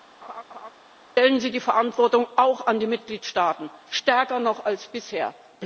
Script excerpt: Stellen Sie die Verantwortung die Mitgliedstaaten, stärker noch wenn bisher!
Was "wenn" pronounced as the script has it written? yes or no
no